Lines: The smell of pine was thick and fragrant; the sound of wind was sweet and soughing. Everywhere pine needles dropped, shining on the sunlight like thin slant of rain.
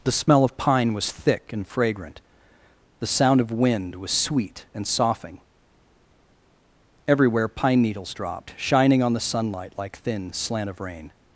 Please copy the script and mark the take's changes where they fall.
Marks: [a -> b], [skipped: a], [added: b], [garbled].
The smell of pine was thick and fragrant; the sound of wind was sweet and soughing. Everywhere pine needles dropped, shining on the sunlight like thin slant of rain.